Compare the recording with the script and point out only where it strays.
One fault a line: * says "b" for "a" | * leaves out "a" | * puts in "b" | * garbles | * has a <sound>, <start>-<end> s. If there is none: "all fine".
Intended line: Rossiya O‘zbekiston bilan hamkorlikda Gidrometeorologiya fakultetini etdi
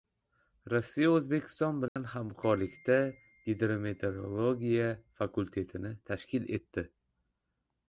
* has a dropout, 1.9-2.0 s
* puts in "tashkil"